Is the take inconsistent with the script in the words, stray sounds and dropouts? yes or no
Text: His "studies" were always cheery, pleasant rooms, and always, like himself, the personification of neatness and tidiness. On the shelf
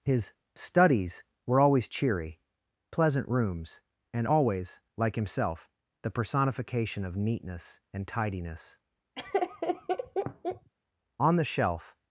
yes